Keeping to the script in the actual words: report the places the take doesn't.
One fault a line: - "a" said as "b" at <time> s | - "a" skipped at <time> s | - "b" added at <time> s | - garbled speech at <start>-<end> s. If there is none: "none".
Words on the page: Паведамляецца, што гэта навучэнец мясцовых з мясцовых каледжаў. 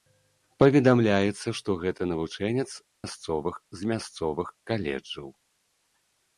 none